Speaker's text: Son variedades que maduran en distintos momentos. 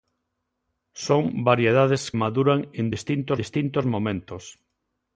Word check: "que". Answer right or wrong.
wrong